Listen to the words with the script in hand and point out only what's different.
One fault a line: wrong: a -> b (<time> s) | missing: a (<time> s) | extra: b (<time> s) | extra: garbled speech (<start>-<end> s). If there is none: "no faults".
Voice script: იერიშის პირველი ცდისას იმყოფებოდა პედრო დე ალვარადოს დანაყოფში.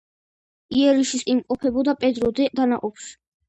missing: პირველი ცდისას (1.2 s)
missing: ალვარადოს (2.5 s)